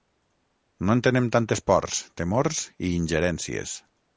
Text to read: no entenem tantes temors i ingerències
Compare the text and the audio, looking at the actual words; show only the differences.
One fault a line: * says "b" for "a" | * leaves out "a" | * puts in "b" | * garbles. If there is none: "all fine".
* puts in "pors"